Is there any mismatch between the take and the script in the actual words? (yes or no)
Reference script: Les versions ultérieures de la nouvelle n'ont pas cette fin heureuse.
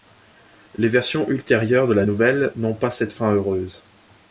no